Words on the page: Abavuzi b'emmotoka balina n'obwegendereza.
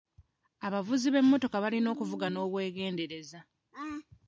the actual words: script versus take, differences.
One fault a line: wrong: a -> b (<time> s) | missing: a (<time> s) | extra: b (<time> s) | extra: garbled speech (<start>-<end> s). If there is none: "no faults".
extra: okuvuga (1.9 s)